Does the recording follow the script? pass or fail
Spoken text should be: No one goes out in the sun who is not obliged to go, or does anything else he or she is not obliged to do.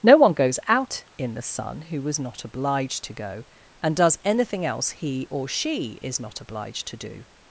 fail